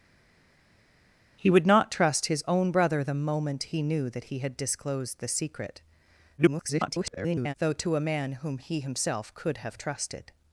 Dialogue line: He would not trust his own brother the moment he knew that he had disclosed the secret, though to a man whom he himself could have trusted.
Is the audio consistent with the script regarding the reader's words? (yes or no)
no